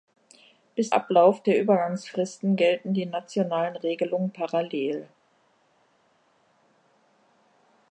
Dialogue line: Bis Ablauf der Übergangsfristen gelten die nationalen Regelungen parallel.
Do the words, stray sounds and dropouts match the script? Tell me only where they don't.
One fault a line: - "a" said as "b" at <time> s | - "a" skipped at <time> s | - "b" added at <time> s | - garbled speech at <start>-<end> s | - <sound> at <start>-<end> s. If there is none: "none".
none